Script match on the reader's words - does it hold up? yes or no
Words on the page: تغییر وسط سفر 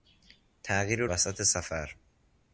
yes